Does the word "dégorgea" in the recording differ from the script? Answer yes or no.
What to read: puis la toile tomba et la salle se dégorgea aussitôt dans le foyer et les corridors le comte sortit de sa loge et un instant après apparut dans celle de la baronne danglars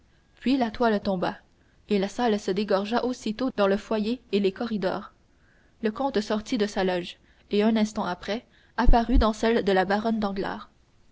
no